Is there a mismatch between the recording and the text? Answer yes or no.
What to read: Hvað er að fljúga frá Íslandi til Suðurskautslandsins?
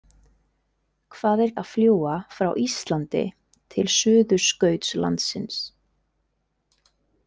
no